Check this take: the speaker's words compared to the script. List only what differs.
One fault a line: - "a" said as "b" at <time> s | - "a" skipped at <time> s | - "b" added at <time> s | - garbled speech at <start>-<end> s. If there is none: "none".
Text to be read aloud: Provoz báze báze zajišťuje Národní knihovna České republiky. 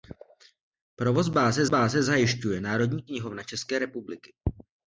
none